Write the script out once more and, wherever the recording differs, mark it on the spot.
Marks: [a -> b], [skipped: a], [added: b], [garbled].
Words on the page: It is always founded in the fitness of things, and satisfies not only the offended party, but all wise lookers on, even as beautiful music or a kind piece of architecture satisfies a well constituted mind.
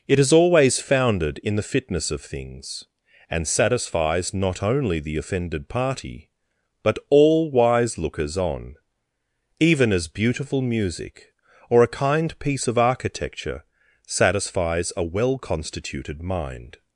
It is always founded in the fitness of things, and satisfies not only the offended party, but all wise lookers on, even as beautiful music or a kind piece of architecture satisfies a well constituted mind.